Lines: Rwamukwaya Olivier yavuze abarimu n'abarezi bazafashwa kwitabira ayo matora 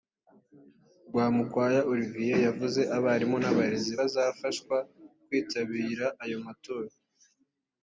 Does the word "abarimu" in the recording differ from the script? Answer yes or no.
no